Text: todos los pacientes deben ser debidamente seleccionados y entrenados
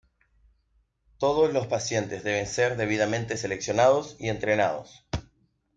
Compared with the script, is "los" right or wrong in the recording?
right